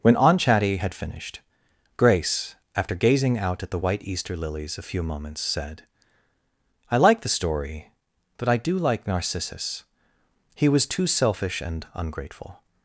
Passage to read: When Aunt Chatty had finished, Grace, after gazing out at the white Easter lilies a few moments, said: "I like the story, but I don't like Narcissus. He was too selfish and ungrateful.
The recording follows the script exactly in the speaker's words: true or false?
false